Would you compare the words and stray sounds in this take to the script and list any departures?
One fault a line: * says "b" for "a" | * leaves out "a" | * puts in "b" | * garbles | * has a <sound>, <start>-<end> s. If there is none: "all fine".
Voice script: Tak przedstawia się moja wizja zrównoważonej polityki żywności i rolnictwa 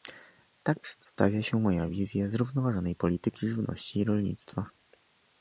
all fine